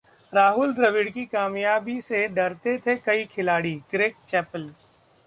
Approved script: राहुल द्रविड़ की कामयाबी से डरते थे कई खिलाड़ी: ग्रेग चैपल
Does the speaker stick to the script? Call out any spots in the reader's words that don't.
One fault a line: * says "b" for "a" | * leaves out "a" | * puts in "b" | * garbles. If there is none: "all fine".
all fine